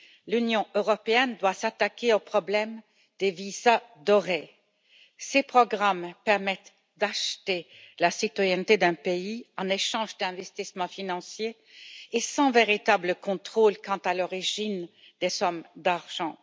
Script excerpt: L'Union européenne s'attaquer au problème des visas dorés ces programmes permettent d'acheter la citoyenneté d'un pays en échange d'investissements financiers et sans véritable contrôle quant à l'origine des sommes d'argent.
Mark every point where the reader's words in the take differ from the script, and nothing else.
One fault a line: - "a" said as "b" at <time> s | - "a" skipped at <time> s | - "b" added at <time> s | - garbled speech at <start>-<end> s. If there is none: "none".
- "doit" added at 1.4 s